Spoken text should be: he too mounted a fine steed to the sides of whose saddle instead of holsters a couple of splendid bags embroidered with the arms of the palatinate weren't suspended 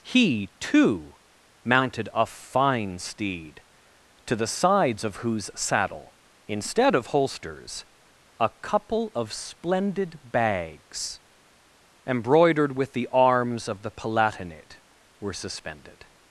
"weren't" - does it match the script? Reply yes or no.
no